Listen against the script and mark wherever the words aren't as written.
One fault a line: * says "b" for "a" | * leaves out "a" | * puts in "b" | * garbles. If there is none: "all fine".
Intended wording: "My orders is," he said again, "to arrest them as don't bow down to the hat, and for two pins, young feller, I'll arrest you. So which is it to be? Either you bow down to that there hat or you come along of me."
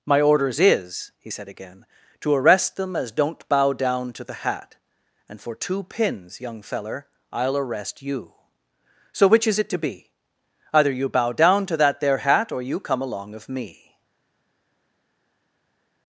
all fine